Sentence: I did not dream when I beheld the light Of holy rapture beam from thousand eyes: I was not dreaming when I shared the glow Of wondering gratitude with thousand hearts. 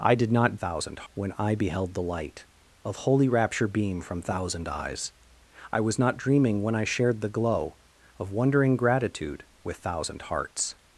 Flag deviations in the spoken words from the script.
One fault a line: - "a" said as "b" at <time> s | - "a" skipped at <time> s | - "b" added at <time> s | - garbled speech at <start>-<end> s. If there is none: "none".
- "dream" said as "thousand" at 0.5 s